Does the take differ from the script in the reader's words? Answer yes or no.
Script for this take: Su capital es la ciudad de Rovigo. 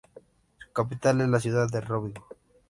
no